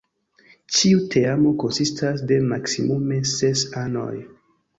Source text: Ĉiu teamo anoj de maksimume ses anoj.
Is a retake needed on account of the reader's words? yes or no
yes